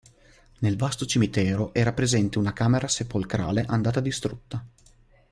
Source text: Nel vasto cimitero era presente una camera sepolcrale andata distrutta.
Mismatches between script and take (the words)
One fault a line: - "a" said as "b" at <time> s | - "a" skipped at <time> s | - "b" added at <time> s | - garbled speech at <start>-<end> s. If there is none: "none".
none